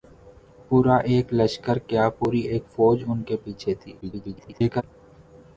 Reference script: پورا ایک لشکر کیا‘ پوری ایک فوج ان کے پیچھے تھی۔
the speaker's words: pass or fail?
fail